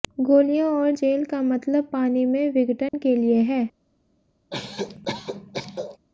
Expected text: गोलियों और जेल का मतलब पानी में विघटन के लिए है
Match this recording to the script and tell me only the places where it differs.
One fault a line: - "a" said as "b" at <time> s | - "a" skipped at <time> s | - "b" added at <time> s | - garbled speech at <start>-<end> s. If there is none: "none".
none